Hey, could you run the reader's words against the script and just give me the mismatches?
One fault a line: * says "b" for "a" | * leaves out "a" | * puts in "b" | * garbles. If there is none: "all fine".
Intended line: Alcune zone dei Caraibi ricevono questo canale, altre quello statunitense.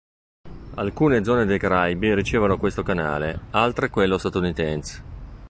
all fine